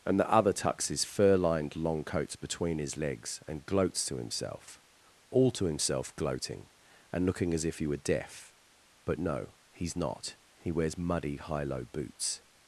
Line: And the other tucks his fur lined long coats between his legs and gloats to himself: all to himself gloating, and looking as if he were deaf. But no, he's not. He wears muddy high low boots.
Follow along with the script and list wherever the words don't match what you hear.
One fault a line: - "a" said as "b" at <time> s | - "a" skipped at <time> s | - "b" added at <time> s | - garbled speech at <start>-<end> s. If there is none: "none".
none